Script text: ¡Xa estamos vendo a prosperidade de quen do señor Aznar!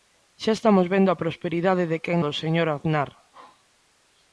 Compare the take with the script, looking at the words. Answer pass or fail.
pass